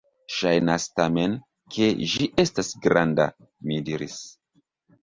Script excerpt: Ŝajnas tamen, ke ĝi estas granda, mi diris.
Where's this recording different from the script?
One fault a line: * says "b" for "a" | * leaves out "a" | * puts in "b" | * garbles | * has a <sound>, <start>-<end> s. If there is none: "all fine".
all fine